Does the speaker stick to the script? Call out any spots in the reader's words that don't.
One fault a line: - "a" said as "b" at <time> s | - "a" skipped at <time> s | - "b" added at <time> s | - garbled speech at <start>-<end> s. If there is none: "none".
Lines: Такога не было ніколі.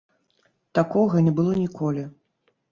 none